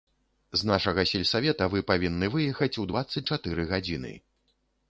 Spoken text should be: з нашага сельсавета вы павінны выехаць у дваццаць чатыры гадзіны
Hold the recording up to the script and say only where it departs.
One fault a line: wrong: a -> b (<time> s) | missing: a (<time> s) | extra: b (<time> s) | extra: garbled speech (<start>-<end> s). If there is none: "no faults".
no faults